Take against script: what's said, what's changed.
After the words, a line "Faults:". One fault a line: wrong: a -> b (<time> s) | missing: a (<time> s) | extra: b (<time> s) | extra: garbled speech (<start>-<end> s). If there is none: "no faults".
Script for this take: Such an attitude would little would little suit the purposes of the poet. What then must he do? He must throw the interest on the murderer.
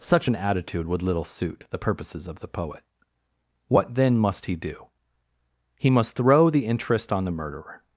Such an attitude would little suit the purposes of the poet. What then must he do? He must throw the interest on the murderer.
Faults:
missing: would little (1.3 s)